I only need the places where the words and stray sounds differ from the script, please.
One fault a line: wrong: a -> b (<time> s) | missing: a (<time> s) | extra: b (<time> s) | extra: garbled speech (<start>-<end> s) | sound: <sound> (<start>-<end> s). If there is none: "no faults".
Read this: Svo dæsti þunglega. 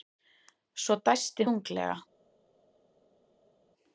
no faults